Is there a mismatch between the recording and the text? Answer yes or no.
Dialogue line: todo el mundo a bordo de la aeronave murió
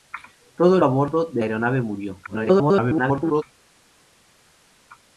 yes